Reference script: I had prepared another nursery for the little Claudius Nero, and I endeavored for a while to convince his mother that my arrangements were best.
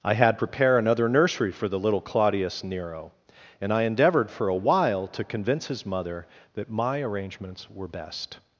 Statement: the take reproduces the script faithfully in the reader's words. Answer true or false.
false